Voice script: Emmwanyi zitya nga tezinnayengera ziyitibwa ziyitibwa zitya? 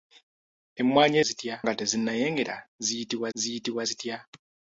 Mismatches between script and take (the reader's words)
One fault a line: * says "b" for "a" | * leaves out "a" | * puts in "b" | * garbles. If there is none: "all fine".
all fine